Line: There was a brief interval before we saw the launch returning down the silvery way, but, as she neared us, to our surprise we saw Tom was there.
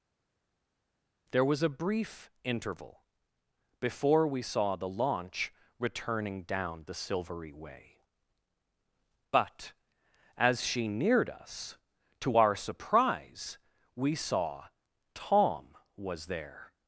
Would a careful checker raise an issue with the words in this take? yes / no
no